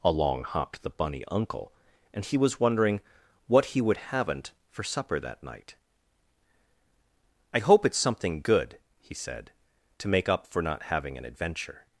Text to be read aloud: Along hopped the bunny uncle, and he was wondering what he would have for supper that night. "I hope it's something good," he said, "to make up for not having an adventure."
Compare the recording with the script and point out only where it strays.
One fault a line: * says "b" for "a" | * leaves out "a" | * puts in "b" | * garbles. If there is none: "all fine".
* says "haven't" for "have"